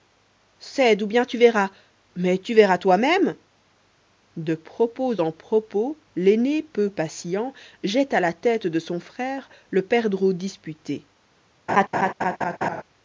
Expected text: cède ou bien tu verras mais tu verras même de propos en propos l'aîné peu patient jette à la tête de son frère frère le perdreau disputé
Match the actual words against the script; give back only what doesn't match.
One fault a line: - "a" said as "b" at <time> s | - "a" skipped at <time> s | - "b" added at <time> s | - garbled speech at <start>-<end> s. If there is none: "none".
- "toi" added at 2.8 s
- "frère" skipped at 9.5 s